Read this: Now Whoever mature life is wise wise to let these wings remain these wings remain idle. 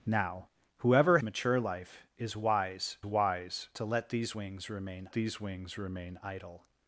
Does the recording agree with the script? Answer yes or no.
yes